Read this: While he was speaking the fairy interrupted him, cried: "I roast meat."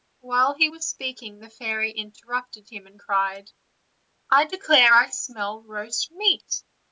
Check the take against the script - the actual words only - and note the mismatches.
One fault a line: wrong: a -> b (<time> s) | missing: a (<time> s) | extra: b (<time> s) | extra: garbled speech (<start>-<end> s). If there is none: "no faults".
extra: and (2.9 s)
extra: declare I smell (4.4 s)